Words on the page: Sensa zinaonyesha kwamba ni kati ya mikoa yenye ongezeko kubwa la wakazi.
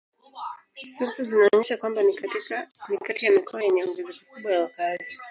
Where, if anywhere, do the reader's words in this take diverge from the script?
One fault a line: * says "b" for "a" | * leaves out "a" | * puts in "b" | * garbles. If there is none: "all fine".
all fine